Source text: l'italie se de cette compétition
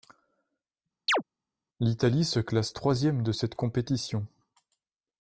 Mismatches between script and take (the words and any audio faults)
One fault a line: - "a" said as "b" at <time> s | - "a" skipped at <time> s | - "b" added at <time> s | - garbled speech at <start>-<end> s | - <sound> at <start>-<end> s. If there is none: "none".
- chirp at 1.1-1.2 s
- "classe troisième" added at 2.4 s